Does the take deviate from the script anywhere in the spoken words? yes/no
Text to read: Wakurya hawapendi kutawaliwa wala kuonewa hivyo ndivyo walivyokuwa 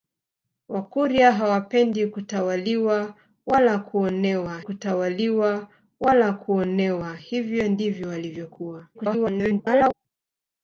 yes